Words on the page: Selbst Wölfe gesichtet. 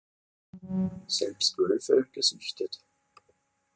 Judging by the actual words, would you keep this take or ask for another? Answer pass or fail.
pass